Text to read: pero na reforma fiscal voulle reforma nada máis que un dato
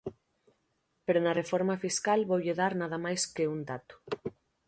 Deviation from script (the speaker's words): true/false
true